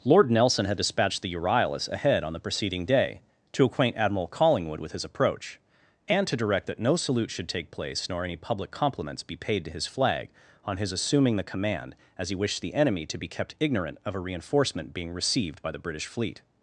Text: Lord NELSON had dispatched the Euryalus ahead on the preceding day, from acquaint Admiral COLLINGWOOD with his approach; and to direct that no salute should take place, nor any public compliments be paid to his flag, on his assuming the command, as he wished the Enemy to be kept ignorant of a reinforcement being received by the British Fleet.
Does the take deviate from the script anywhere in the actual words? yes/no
yes